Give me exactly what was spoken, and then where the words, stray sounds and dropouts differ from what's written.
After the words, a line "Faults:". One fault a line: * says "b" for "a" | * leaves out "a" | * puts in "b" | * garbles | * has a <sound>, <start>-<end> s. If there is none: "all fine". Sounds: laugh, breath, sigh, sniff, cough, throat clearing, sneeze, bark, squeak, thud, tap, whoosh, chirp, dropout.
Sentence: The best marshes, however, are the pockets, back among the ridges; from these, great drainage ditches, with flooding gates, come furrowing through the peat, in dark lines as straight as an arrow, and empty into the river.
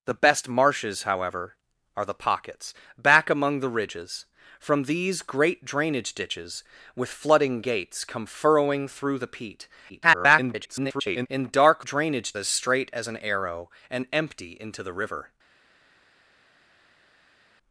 The best marshes, however, are the pockets, back among the ridges; from these, great drainage ditches, with flooding gates, come furrowing through the peat, [garbled] in dark drainage as straight as an arrow, and empty into the river.
Faults:
* garbles
* says "drainage" for "lines"